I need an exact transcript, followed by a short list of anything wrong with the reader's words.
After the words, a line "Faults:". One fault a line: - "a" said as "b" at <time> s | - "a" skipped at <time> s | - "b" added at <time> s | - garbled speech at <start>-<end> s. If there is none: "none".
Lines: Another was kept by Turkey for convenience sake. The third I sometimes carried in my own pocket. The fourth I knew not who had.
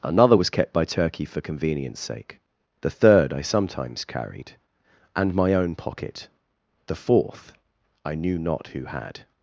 Another was kept by Turkey for convenience sake. The third I sometimes carried and my own pocket. The fourth I knew not who had.
Faults:
- "in" said as "and" at 5.2 s